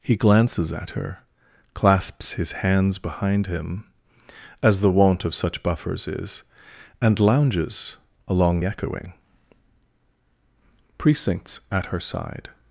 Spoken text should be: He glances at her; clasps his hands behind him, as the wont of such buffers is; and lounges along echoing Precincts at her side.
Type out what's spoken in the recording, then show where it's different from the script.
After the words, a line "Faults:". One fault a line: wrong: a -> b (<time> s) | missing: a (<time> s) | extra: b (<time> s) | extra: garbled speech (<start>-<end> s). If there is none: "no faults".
He glances at her; clasps his hands behind him, as the wont of such buffers is; and lounges along echoing Precincts at her side.
Faults:
no faults